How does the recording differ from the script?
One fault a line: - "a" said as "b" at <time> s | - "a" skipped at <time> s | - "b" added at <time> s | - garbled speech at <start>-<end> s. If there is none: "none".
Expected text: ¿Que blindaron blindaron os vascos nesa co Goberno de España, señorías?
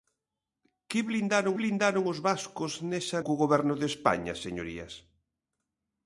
none